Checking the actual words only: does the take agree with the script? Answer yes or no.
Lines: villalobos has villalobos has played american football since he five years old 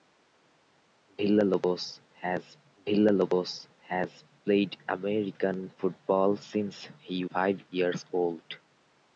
yes